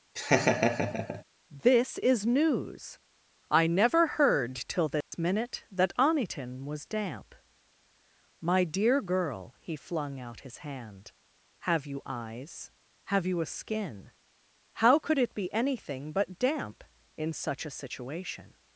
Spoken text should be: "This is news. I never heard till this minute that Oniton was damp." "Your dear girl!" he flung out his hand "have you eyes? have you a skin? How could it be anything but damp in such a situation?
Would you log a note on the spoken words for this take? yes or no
yes